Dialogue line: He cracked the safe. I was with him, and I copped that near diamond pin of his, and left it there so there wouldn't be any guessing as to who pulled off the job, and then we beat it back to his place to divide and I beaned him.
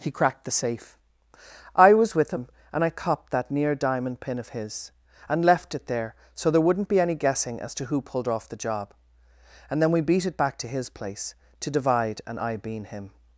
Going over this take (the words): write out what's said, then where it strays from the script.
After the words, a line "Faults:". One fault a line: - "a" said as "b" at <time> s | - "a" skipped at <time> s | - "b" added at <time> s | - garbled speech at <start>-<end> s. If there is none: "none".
He cracked the safe. I was with him, and I copped that near diamond pin of his, and left it there so there wouldn't be any guessing as to who pulled off the job, and then we beat it back to his place to divide and I bean him.
Faults:
- "beaned" said as "bean" at 12.6 s